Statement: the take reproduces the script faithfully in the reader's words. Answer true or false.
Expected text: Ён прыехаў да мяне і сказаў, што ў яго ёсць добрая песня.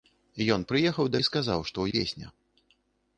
false